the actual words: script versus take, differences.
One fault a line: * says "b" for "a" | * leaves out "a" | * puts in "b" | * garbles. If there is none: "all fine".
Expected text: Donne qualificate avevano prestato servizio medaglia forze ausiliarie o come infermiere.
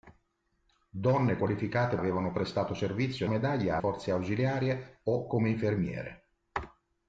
all fine